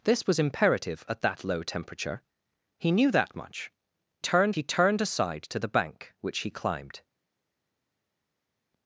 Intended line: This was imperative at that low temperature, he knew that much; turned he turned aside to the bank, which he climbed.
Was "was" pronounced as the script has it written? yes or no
yes